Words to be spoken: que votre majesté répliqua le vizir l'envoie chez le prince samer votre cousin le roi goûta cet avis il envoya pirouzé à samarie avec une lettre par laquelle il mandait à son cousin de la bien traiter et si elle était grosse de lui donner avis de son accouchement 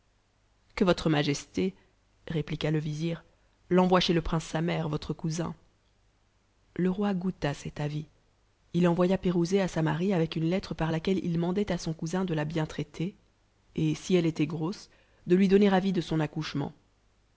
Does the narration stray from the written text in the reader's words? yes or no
no